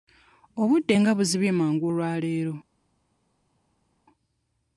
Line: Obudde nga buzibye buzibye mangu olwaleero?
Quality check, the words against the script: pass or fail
fail